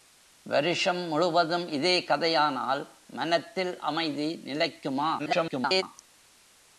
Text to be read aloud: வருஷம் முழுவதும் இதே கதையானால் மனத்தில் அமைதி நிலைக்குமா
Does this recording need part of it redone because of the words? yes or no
yes